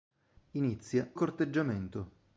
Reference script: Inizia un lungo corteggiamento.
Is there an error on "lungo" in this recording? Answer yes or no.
yes